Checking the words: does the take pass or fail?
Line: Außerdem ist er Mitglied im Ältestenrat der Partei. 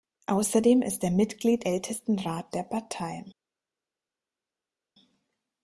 fail